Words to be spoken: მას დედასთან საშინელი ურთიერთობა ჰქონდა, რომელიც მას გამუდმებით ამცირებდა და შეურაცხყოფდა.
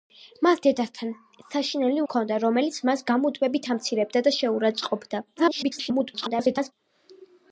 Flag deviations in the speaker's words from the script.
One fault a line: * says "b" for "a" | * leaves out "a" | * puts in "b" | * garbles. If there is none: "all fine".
* leaves out "ურთიერთობა"
* garbles